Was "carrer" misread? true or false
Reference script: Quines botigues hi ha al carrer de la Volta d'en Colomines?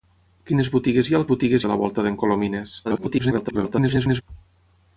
true